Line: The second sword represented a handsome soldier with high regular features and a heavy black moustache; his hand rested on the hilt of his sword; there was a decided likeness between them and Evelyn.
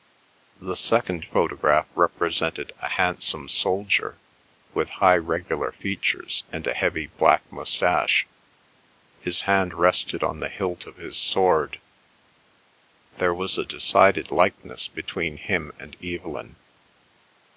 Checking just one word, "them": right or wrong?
wrong